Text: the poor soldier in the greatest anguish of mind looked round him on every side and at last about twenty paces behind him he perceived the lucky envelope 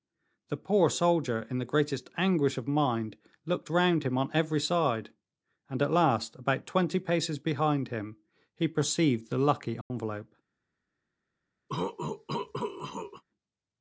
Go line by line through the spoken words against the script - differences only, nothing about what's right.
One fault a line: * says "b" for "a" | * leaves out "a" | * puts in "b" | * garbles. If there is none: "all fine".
all fine